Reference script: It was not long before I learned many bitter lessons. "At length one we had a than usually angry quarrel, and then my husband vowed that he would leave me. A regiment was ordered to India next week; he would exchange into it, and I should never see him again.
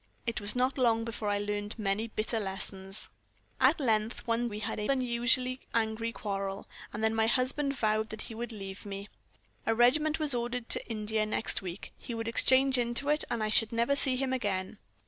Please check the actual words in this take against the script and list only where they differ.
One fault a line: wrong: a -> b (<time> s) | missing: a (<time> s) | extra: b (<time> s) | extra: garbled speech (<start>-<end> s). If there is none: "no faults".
no faults